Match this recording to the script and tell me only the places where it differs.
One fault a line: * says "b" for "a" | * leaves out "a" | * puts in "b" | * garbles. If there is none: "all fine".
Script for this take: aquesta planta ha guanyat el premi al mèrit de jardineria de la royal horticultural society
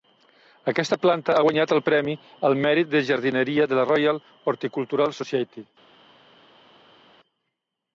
all fine